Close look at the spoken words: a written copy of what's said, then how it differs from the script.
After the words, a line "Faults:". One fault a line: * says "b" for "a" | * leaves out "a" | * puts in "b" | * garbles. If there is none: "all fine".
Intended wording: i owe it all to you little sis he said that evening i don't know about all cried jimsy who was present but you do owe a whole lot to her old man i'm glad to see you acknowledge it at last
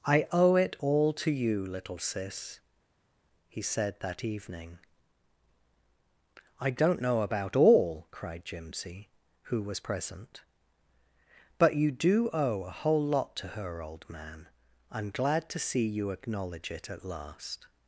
i owe it all to you little sis he said that evening i don't know about all cried jimsy who was present but you do owe a whole lot to her old man i'm glad to see you acknowledge it at last
Faults:
all fine